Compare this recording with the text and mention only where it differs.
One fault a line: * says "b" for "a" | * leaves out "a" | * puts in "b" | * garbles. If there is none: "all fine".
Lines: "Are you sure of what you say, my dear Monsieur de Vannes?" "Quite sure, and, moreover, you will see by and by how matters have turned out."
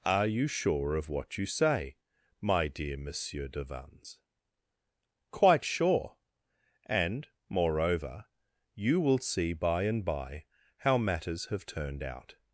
all fine